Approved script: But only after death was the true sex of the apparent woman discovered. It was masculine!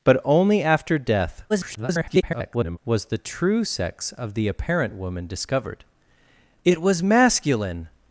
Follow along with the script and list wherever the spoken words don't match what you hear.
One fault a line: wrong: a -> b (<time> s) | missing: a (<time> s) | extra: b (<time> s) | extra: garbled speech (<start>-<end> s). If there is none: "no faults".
extra: garbled speech (1.5-2.8 s)